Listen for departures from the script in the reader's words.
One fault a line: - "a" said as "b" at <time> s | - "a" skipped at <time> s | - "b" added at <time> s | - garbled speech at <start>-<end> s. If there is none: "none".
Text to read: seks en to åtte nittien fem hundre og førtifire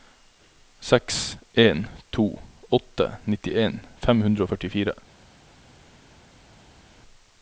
none